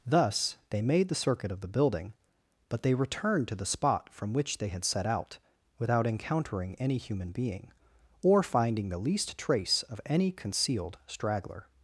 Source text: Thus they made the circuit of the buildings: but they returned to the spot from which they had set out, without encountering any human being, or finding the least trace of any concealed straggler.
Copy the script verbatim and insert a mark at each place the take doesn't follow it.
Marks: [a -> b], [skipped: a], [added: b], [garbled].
Thus they made the circuit of the [buildings: -> building] but they returned to the spot from which they had set out, without encountering any human being, or finding the least trace of any concealed straggler.